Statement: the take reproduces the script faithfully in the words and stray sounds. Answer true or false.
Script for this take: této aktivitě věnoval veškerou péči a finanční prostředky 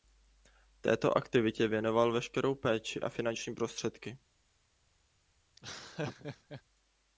false